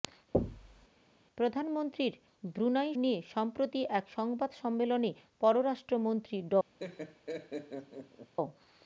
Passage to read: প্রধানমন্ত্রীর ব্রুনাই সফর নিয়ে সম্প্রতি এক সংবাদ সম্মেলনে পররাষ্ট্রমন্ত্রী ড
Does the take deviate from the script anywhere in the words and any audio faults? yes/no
yes